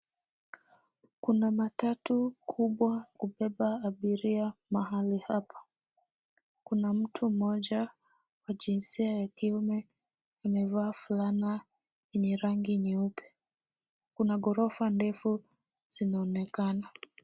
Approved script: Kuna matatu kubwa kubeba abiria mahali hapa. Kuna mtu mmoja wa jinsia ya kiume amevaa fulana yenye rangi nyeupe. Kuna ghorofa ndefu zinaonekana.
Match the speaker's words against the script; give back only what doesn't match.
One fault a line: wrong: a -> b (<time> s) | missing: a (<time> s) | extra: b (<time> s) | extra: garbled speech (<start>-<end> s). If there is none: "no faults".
no faults